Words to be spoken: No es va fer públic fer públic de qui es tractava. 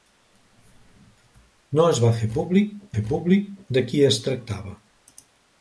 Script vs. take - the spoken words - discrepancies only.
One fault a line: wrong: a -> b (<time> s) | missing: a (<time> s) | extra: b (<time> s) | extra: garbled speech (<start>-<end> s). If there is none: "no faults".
no faults